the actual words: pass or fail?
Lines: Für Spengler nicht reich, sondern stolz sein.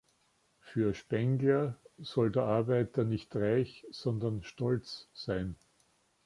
fail